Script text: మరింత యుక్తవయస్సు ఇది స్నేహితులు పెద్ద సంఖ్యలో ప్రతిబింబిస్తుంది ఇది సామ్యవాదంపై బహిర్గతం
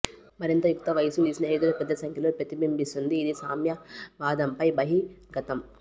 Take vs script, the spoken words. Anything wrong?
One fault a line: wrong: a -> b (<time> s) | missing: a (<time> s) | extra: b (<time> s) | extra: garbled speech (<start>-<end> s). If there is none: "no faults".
no faults